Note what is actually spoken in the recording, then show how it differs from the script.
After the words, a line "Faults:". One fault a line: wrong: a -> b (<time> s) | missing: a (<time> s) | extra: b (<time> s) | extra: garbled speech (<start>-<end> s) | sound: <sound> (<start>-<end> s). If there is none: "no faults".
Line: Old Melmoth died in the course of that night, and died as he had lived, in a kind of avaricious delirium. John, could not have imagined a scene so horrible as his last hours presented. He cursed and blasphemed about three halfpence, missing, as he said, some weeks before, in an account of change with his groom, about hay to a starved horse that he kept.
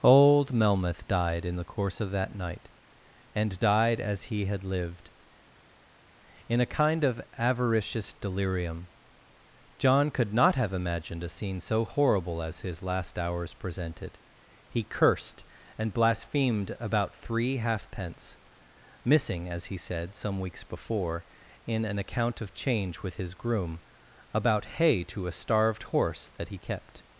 Old Melmoth died in the course of that night, and died as he had lived, in a kind of avaricious delirium. John, could not have imagined a scene so horrible as his last hours presented. He cursed and blasphemed about three halfpence, missing, as he said, some weeks before, in an account of change with his groom, about hay to a starved horse that he kept.
Faults:
no faults